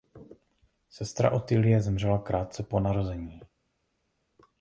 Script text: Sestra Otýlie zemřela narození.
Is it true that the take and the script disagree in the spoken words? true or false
true